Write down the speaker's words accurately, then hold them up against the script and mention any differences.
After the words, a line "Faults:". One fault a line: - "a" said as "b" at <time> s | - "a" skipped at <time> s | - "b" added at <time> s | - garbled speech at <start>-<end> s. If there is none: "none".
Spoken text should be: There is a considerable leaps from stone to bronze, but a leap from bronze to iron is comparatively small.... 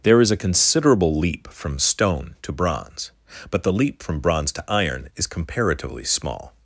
There is a considerable leap from stone to bronze, but the leap from bronze to iron is comparatively small....
Faults:
- "leaps" said as "leap" at 1.1 s
- "a" said as "the" at 3.6 s